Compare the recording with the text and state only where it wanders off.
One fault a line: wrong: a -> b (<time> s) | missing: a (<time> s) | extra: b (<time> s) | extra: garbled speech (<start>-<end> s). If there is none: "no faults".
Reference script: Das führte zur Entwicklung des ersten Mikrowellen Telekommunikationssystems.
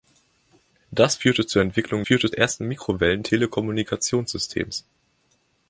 wrong: des -> führte (2.0 s)